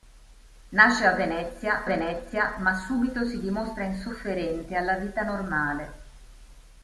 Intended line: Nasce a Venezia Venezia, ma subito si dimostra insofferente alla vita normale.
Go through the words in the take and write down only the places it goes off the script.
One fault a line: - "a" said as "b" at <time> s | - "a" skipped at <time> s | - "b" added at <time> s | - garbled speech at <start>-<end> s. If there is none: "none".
none